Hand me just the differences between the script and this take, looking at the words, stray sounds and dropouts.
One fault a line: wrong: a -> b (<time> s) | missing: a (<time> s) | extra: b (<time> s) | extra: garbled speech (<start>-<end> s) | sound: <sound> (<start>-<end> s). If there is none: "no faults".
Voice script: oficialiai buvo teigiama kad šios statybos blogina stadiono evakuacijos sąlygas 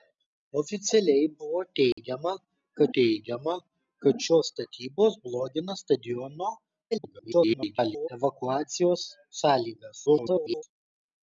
sound: dropout (1.9-2.0 s)
extra: teigiama kad (3.0 s)
extra: garbled speech (6.9-8.1 s)
extra: garbled speech (10.1-10.6 s)